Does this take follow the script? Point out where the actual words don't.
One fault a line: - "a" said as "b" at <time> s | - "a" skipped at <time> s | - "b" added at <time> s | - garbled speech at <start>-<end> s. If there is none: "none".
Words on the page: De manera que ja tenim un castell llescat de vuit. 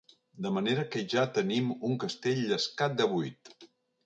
none